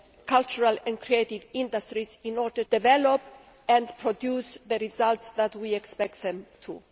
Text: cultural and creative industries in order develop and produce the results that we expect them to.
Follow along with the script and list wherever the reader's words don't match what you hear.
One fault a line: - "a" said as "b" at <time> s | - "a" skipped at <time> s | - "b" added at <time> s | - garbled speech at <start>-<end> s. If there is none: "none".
none